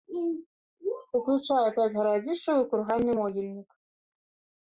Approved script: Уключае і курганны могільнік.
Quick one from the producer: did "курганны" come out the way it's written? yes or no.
yes